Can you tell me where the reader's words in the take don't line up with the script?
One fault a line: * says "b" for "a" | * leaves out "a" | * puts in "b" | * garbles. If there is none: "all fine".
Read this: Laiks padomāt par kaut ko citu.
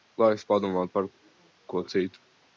* leaves out "kaut"